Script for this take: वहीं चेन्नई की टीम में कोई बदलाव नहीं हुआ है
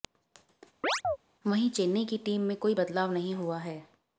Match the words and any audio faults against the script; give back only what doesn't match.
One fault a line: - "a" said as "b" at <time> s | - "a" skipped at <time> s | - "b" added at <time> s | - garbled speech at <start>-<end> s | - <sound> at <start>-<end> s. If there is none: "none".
- chirp at 0.8-1.2 s